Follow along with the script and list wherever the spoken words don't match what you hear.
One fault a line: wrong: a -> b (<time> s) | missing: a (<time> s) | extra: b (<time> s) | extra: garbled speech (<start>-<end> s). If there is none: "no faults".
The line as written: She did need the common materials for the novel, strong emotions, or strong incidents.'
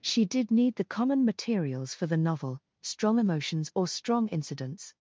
no faults